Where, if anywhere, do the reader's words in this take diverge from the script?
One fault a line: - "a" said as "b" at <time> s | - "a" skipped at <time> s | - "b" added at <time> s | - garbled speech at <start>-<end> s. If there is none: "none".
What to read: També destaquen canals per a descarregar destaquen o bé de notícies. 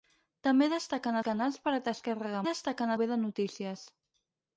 none